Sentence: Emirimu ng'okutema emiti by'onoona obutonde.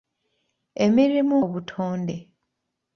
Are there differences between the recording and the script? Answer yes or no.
yes